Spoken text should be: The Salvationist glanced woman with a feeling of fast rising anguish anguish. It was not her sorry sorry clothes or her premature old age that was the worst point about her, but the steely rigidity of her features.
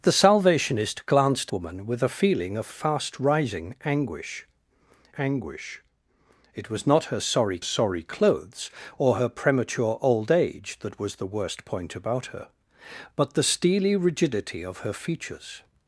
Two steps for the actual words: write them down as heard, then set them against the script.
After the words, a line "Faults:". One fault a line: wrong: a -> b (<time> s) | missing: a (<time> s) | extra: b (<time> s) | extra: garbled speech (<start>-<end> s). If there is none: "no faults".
The Salvationist glanced woman with a feeling of fast rising anguish anguish. It was not her sorry sorry clothes or her premature old age that was the worst point about her, but the steely rigidity of her features.
Faults:
no faults